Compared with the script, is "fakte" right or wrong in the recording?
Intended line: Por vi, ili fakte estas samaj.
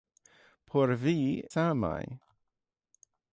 wrong